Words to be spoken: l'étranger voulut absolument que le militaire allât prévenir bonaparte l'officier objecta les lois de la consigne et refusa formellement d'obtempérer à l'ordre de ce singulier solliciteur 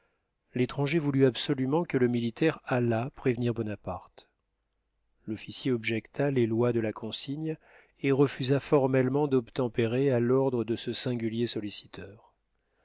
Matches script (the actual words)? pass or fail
pass